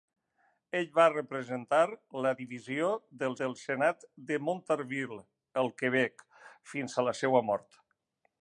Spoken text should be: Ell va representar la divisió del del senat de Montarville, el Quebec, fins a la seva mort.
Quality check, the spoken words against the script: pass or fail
pass